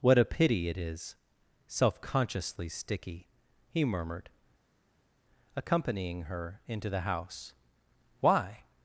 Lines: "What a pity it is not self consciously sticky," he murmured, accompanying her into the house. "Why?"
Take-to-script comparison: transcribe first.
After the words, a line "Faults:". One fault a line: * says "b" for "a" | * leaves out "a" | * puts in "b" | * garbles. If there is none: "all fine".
"What a pity it is self consciously sticky," he murmured, accompanying her into the house. "Why?"
Faults:
* leaves out "not"